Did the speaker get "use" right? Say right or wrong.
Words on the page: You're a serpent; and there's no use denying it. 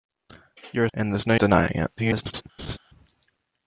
wrong